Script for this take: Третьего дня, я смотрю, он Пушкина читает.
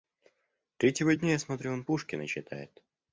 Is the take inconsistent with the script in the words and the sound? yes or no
no